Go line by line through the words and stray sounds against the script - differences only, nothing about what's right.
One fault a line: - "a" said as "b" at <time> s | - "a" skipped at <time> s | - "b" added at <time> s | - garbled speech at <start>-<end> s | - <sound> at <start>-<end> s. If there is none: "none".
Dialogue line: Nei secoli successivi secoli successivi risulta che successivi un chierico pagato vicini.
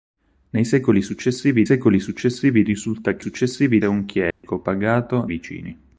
- dropout at 4.3-4.4 s